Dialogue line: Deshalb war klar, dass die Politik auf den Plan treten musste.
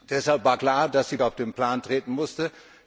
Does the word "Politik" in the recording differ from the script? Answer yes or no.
yes